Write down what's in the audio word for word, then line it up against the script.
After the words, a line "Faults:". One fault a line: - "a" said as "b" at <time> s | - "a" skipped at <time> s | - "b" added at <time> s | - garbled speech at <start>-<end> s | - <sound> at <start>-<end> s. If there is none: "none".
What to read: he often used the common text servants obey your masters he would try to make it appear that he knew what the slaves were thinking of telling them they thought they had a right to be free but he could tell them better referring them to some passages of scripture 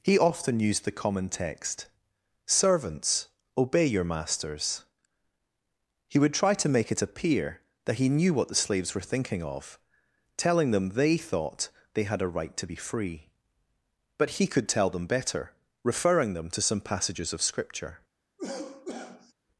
he often used the common text servants obey your masters he would try to make it appear that he knew what the slaves were thinking of telling them they thought they had a right to be free but he could tell them better referring them to some passages of scripture
Faults:
- cough at 18.4-19.3 s